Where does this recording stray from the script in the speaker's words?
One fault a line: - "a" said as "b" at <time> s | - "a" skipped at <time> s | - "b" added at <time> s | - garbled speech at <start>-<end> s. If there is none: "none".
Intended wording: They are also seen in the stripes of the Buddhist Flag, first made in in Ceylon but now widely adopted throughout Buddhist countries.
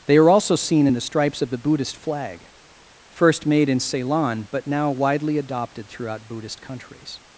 - "in" skipped at 3.8 s